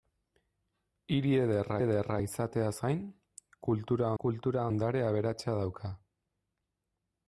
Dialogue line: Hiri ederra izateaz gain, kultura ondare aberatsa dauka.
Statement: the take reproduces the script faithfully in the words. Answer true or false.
false